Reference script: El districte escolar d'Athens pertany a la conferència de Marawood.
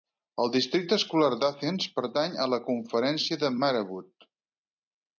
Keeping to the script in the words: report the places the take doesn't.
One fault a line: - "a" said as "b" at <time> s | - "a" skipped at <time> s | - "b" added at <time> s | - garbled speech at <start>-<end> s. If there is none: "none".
none